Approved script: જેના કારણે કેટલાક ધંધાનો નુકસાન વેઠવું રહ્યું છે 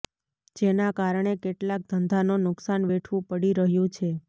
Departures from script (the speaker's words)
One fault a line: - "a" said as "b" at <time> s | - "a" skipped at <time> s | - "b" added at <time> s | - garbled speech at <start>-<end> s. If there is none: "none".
- "પડી" added at 3.3 s